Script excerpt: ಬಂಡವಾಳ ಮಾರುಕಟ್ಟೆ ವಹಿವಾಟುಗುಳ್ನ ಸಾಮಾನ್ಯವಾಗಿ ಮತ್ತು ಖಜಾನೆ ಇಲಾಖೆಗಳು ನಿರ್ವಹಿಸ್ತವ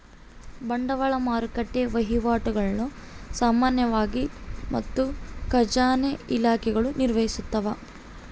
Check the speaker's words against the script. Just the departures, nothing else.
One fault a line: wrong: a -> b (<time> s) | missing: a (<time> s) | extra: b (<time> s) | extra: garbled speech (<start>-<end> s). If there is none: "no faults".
no faults